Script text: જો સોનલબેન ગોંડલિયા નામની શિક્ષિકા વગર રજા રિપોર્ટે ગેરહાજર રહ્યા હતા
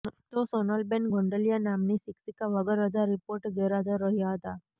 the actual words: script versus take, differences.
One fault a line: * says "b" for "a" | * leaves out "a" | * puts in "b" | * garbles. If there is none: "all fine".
* says "તો" for "જો"